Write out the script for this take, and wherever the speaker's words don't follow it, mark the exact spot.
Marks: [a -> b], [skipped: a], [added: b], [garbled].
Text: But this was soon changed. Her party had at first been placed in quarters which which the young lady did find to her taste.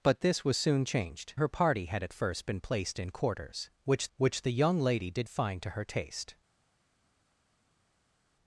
But this was soon changed. Her party had at first been placed in quarters which which the young lady did find to her taste.